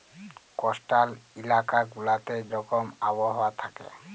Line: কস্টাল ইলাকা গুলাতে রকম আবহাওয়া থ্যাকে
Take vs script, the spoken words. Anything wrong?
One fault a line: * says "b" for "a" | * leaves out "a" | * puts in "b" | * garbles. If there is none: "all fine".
all fine